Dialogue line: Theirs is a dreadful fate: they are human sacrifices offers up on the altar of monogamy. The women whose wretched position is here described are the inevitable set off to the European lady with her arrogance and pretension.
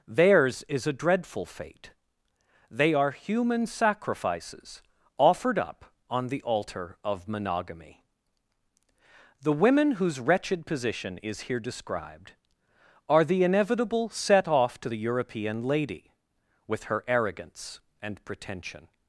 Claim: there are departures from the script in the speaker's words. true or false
true